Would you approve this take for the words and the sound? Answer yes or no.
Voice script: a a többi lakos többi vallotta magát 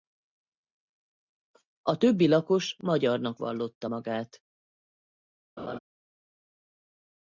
no